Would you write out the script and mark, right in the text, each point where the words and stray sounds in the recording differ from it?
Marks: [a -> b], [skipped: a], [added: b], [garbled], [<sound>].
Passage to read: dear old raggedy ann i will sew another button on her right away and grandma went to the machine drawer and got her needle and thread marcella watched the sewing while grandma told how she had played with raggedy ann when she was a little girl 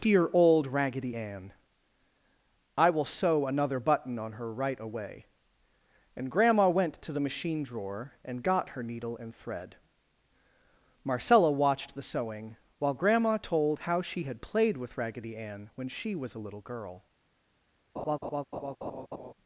dear old raggedy ann i will sew another button on her right away and grandma went to the machine drawer and got her needle and thread marcella watched the sewing while grandma told how she had played with raggedy ann when she was a little girl [laugh]